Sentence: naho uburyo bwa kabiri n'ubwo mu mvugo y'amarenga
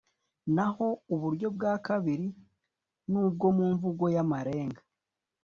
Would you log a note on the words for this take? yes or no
no